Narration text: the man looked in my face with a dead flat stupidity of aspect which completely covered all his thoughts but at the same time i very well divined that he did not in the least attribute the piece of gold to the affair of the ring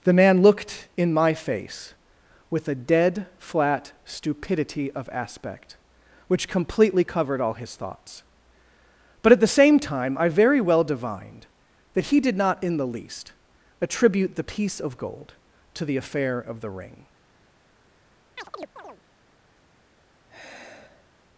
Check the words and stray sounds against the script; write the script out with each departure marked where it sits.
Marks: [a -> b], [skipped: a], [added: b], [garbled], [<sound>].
the man looked in my face with a dead flat stupidity of aspect which completely covered all his thoughts but at the same time i very well divined that he did not in the least attribute the piece of gold to the affair of the ring [chirp] [sigh]